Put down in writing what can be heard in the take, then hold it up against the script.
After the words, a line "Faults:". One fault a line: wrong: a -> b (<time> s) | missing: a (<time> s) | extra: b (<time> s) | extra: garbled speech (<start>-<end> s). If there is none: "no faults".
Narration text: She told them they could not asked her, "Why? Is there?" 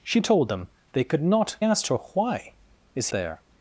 She told them they could not asked her, "Why? Is there?"
Faults:
no faults